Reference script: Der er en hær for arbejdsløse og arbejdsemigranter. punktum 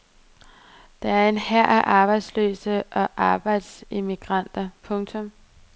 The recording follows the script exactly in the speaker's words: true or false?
false